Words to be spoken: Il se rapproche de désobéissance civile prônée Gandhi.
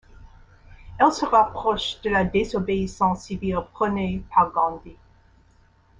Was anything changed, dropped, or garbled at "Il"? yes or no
yes